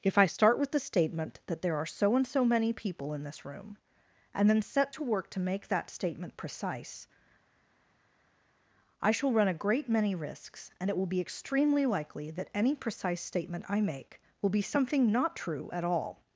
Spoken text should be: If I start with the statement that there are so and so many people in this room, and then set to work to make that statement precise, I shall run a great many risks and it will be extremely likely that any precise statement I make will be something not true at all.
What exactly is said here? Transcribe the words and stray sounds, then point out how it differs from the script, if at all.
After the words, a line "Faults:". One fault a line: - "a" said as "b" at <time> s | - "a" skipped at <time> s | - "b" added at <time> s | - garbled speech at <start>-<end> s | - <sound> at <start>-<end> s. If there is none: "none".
If I start with the statement that there are so and so many people in this room, and then set to work to make that statement precise, I shall run a great many risks and it will be extremely likely that any precise statement I make will be something not true at all.
Faults:
none